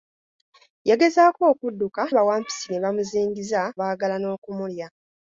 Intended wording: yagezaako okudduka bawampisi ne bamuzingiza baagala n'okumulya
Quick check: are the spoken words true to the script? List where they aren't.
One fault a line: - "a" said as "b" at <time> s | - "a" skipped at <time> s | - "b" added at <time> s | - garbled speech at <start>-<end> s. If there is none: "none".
none